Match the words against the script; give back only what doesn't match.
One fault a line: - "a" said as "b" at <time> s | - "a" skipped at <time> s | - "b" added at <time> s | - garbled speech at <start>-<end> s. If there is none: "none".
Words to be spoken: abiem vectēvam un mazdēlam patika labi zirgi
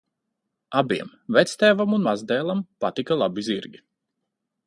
none